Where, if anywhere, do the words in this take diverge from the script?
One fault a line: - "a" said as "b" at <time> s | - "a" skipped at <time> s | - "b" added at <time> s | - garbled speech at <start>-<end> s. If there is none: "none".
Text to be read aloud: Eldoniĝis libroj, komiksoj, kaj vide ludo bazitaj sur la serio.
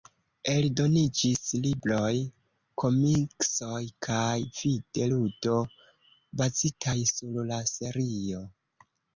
none